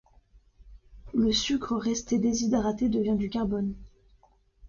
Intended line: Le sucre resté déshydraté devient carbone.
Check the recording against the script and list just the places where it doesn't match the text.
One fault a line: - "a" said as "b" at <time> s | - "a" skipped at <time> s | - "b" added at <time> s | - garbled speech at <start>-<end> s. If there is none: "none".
- "du" added at 3.1 s